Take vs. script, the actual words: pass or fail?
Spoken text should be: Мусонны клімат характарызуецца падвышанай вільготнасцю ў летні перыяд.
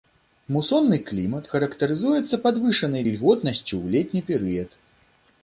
pass